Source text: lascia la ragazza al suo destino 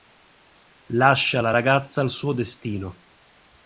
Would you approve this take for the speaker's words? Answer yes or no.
yes